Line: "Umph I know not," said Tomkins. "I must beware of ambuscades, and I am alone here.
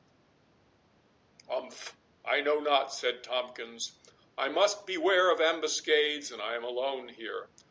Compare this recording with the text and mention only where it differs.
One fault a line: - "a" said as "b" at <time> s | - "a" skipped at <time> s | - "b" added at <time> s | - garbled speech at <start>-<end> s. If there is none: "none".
none